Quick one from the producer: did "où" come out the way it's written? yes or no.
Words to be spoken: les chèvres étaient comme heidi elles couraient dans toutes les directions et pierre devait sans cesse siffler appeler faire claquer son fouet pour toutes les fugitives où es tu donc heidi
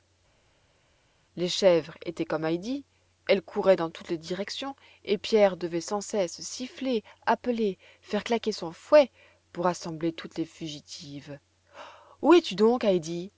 yes